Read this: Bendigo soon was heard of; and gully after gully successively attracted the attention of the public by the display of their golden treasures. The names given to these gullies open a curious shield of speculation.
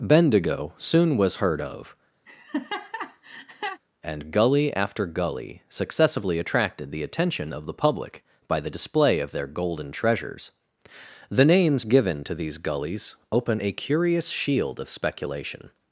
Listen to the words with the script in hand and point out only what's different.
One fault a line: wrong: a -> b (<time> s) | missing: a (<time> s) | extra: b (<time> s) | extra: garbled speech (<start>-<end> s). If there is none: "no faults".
no faults